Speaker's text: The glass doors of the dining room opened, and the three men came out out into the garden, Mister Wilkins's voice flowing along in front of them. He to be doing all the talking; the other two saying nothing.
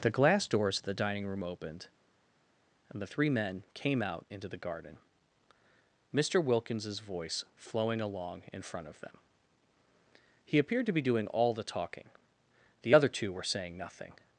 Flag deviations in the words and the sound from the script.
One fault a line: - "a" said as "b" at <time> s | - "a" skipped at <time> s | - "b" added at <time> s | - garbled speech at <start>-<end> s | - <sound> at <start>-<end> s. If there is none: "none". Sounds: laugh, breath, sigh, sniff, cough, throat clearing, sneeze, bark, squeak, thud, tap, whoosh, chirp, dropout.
- "out" skipped at 4.3 s
- "appeared" added at 10.6 s
- "were" added at 13.3 s